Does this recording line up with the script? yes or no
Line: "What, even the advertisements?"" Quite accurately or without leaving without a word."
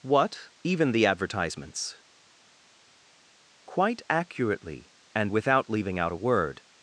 no